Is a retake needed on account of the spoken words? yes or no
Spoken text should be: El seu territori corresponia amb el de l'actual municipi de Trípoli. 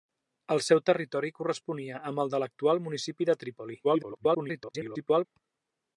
yes